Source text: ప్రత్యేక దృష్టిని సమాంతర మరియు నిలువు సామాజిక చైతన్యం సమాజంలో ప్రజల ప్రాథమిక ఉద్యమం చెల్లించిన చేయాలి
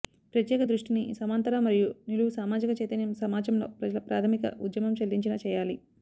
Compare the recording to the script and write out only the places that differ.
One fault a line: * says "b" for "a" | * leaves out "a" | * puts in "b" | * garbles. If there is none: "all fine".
all fine